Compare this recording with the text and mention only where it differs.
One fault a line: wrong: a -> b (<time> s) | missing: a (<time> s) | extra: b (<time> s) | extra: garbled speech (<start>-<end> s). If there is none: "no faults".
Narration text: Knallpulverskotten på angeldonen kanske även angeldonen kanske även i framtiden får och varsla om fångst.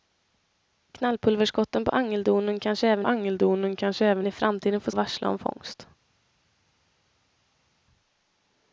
no faults